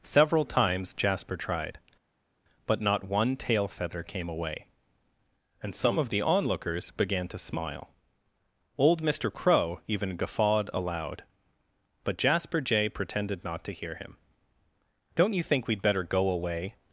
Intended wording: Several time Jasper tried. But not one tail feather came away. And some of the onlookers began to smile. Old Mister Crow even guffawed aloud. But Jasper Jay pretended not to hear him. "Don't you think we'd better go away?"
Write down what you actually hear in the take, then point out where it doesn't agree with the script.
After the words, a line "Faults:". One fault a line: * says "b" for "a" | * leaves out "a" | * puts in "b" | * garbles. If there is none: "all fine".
Several times Jasper tried. But not one tail feather came away. And some of the onlookers began to smile. Old Mister Crow even guffawed aloud. But Jasper Jay pretended not to hear him. "Don't you think we'd better go away?"
Faults:
* says "times" for "time"